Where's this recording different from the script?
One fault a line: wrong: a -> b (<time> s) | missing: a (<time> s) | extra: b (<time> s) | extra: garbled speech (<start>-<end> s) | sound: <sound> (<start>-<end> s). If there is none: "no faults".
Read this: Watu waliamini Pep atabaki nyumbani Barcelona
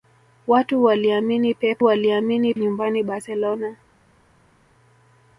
wrong: atabaki -> waliamini (1.8 s)